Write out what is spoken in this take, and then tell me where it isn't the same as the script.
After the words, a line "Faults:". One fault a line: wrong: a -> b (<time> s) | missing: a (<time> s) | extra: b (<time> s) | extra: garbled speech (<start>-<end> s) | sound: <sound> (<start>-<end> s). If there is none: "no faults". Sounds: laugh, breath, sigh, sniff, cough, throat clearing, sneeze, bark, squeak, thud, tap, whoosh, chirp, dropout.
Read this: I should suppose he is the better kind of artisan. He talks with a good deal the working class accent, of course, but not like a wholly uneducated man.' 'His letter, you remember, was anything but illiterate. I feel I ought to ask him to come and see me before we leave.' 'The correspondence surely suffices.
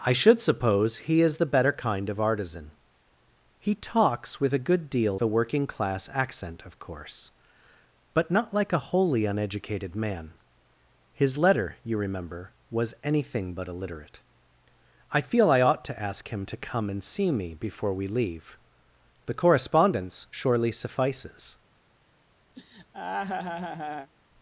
I should suppose he is the better kind of artisan. He talks with a good deal the working class accent, of course, but not like a wholly uneducated man.' 'His letter, you remember, was anything but illiterate. I feel I ought to ask him to come and see me before we leave.' 'The correspondence surely suffices.
Faults:
sound: laugh (22.6-24.1 s)